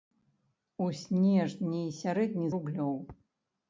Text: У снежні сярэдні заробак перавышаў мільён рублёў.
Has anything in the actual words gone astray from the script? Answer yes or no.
yes